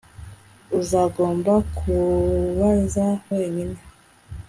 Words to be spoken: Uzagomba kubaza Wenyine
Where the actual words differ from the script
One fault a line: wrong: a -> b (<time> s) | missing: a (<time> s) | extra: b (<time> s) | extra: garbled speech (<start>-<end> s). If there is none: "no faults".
no faults